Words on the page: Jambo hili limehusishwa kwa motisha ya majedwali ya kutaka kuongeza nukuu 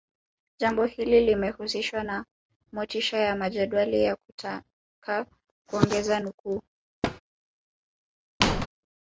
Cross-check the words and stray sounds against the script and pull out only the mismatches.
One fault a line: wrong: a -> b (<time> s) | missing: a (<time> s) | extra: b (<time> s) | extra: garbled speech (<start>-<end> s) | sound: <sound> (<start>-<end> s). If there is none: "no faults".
wrong: kwa -> na (2.0 s)
sound: thud (7.0-7.2 s)
sound: squeak (8.4-8.7 s)